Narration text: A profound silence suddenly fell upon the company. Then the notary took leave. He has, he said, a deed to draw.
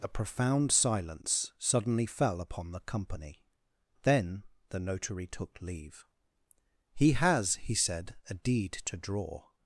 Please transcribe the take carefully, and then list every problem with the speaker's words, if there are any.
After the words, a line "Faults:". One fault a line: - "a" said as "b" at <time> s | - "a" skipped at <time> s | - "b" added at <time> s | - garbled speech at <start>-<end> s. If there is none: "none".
A profound silence suddenly fell upon the company. Then the notary took leave. He has, he said, a deed to draw.
Faults:
none